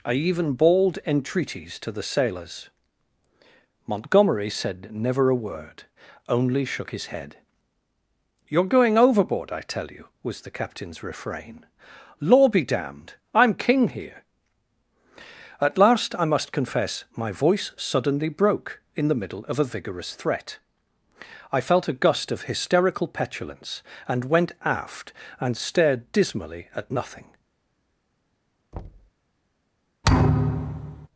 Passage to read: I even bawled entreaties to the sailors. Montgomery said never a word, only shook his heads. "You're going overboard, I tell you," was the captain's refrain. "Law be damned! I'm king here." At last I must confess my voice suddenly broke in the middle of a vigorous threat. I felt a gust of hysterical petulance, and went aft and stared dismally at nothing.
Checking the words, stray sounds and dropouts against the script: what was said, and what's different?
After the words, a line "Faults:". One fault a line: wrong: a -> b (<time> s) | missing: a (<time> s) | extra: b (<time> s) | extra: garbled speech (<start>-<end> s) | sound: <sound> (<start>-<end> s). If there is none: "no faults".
I even bawled entreaties to the sailors. Montgomery said never a word, only shook his head. "You're going overboard, I tell you," was the captain's refrain. "Law be damned! I'm king here." At last I must confess my voice suddenly broke in the middle of a vigorous threat. I felt a gust of hysterical petulance, and went aft and stared dismally at nothing.
Faults:
wrong: heads -> head (7.1 s)
sound: thud (28.7-29.1 s)
sound: thud (30.0-31.1 s)